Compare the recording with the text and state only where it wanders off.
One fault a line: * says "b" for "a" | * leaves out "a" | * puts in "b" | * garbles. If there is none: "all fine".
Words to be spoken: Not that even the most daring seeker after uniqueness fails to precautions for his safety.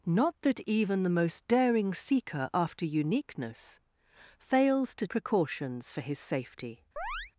all fine